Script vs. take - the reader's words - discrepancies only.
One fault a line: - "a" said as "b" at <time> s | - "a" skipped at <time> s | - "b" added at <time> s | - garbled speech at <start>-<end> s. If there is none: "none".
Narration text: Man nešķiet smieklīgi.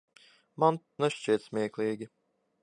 none